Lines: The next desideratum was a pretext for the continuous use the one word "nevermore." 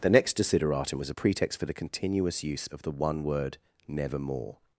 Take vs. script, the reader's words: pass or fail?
fail